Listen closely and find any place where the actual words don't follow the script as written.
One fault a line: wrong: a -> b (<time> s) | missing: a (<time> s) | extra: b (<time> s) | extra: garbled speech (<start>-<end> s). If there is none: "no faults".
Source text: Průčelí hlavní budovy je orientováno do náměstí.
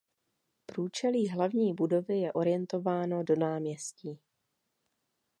no faults